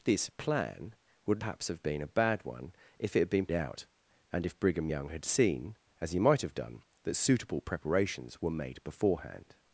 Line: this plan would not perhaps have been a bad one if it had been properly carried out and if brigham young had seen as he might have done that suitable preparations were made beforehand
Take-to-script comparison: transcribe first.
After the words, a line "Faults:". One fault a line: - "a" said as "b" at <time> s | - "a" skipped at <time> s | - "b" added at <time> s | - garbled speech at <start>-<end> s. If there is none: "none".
this plan would perhaps have been a bad one if it had been out and if brigham young had seen as he might have done that suitable preparations were made beforehand
Faults:
- "not" skipped at 1.4 s
- "properly carried" skipped at 3.5 s